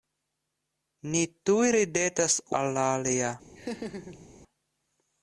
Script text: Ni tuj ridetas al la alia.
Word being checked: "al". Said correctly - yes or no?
yes